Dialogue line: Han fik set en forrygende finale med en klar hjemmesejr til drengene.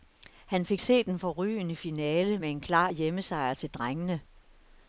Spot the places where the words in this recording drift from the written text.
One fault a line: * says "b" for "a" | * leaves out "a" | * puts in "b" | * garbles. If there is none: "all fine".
all fine